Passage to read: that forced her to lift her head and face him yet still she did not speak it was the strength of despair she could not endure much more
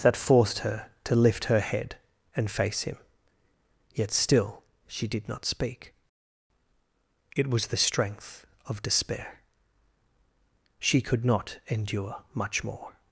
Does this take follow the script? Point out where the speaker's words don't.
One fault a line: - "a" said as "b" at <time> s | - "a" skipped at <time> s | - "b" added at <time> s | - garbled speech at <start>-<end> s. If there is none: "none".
none